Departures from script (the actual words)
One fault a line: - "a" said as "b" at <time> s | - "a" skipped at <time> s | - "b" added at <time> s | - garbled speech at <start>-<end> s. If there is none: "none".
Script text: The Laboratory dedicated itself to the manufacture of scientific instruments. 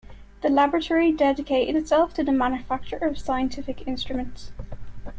none